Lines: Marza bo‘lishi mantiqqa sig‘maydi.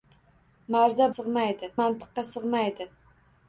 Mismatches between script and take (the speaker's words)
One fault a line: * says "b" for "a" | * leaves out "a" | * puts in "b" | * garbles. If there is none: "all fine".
* says "sig‘maydi" for "bo‘lishi"